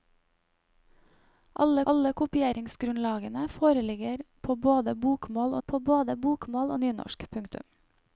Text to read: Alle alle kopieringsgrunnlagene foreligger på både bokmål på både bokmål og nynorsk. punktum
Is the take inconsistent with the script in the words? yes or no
no